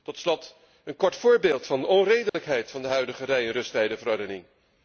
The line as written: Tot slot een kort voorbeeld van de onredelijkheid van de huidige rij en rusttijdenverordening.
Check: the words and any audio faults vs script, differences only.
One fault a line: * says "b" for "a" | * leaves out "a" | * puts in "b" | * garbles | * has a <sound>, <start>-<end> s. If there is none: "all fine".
* has a dropout, 2.3-2.3 s